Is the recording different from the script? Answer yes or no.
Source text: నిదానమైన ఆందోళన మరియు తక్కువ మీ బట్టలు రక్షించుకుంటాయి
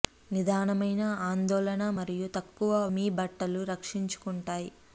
no